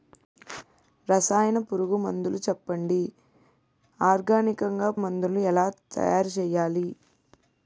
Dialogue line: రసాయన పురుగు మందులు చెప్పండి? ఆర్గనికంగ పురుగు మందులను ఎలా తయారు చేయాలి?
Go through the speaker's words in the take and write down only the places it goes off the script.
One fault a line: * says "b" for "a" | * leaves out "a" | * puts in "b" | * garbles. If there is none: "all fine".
* leaves out "పురుగు"